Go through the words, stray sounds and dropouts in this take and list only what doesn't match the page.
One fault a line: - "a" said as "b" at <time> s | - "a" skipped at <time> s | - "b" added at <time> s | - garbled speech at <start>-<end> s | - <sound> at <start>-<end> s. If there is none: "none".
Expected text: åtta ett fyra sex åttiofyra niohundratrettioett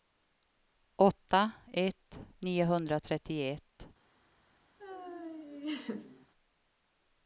- "fyra sex åttiofyra" skipped at 2.2 s
- laugh at 4.8-6.3 s